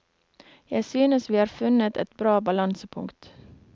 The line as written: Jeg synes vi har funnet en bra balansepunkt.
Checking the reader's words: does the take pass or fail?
fail